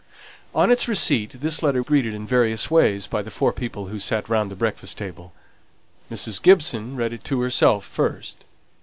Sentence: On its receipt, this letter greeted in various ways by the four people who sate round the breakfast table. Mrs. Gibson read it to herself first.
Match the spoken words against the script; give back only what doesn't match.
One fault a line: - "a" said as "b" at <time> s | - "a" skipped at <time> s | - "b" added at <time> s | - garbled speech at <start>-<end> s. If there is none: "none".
none